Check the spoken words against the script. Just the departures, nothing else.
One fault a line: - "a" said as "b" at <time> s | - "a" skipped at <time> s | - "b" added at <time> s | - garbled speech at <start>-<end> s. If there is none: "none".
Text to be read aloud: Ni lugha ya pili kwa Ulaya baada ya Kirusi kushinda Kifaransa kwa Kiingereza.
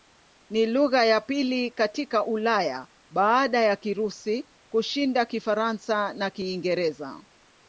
- "kwa" said as "katika" at 1.7 s
- "kwa" said as "na" at 6.1 s